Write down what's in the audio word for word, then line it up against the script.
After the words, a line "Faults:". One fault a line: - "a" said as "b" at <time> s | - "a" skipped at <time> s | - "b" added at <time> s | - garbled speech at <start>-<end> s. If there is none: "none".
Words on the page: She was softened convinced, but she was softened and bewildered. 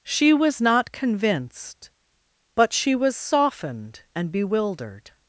She was not convinced, but she was softened and bewildered.
Faults:
- "softened" said as "not" at 0.6 s